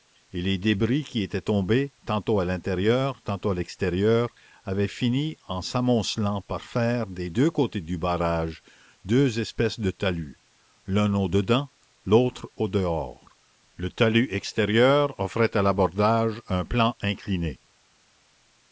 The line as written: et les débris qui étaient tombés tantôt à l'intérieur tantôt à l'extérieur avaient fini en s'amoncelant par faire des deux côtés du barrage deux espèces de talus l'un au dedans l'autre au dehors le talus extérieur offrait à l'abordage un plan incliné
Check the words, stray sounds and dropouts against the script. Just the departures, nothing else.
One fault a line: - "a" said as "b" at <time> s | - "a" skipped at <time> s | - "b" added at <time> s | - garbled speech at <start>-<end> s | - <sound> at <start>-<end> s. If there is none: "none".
none